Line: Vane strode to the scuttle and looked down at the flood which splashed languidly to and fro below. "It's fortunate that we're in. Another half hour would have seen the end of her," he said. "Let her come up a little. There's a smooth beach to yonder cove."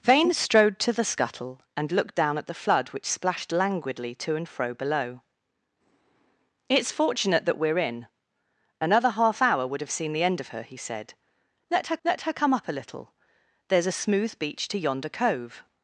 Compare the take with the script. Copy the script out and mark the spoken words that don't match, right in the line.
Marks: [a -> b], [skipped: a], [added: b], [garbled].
Vane strode to the scuttle and looked down at the flood which splashed languidly to and fro below. "It's fortunate that we're in. Another half hour would have seen the end of her," he said. "Let her [added: let her] come up a little. There's a smooth beach to yonder cove."